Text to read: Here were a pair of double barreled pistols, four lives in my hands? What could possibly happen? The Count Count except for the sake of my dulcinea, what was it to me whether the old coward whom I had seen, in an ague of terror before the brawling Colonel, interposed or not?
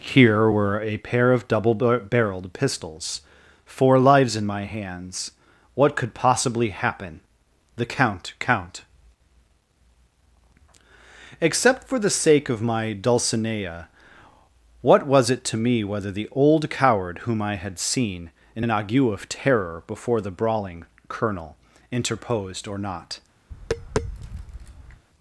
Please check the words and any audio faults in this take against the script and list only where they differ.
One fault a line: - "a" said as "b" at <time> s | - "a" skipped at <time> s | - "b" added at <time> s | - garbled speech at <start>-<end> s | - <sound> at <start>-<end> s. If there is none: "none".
- tap at 23.5-25.0 s